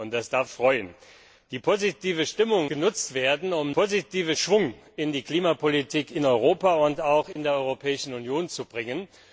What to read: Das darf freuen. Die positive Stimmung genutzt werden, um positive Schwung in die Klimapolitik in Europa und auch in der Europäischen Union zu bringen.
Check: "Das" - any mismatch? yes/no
no